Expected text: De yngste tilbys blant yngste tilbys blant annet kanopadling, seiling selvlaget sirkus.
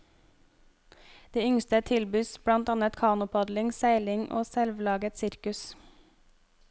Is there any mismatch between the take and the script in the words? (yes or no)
yes